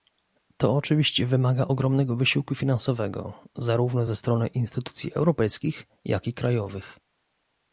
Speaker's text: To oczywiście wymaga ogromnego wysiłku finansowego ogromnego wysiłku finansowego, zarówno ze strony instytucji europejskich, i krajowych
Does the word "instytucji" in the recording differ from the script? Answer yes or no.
no